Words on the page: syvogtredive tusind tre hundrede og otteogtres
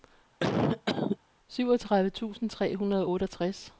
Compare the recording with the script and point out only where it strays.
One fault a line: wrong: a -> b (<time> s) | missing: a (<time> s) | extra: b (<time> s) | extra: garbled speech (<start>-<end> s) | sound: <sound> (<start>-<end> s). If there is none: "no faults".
sound: cough (0.4-1.2 s)